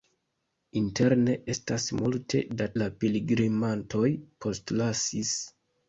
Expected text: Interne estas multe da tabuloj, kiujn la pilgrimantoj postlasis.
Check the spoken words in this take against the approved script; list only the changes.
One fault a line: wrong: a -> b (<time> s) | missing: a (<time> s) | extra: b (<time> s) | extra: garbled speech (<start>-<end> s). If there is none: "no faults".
missing: tabuloj kiujn (2.7 s)